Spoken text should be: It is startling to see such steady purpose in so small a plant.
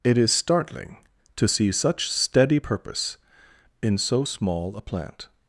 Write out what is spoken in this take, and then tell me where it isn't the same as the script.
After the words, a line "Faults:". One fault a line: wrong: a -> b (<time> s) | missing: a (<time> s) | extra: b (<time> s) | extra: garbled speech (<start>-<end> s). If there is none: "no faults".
It is startling to see such steady purpose in so small a plant.
Faults:
no faults